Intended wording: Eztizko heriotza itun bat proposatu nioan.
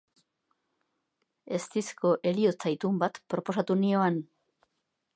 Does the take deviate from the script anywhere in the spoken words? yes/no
no